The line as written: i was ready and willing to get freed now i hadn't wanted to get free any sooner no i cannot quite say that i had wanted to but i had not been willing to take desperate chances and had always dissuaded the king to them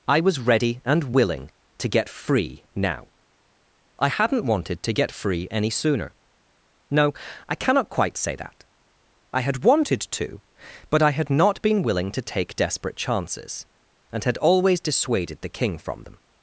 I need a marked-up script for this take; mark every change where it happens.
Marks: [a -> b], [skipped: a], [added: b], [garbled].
i was ready and willing to get [freed -> free] now i hadn't wanted to get free any sooner no i cannot quite say that i had wanted to but i had not been willing to take desperate chances and had always dissuaded the king [to -> from] them